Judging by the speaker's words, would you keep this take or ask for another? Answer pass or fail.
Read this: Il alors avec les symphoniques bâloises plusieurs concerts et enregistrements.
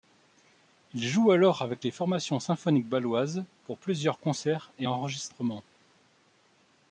fail